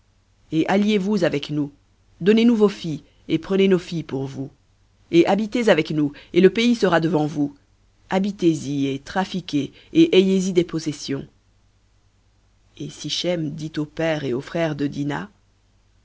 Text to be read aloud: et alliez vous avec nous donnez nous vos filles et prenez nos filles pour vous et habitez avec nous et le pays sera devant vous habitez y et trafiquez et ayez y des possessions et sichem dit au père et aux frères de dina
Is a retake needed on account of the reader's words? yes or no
no